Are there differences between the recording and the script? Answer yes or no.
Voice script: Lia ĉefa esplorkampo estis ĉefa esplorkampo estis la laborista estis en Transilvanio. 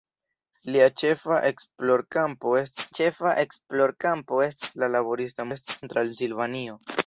no